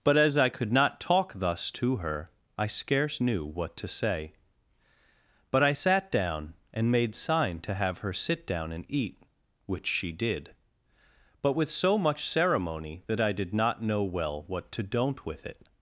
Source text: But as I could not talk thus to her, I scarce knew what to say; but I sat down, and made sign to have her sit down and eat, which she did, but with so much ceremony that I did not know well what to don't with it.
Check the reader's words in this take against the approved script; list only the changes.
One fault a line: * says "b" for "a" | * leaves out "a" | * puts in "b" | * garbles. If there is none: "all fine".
all fine